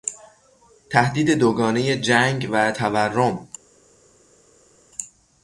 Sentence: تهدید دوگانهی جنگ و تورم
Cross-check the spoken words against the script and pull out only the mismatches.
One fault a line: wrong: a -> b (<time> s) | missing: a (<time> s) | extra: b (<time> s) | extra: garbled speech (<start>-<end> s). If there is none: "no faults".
no faults